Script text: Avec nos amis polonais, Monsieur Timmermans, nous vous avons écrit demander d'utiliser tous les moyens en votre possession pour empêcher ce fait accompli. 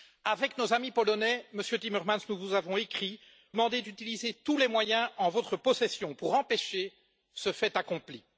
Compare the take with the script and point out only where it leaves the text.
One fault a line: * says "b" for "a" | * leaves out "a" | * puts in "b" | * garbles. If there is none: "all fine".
all fine